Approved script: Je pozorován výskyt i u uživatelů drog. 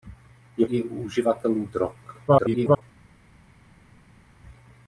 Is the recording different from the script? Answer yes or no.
yes